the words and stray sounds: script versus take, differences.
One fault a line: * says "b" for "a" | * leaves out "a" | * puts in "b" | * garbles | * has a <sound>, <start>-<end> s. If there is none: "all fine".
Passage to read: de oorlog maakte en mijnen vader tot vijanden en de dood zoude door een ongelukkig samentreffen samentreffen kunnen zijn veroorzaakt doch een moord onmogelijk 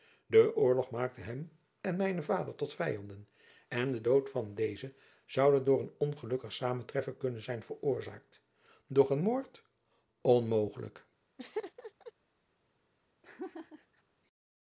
* puts in "hem"
* puts in "van dezen"
* leaves out "samentreffen"
* has a laugh, 11.4-12.1 s
* has a laugh, 13.2-14.0 s